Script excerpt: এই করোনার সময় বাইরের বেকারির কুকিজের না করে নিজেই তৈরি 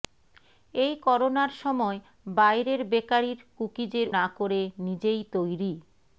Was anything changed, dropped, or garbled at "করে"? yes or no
no